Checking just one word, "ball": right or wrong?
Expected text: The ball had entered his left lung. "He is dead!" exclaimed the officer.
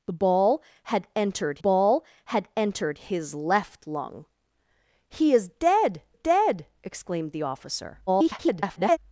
right